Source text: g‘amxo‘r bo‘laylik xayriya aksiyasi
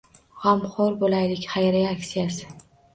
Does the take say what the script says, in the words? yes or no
yes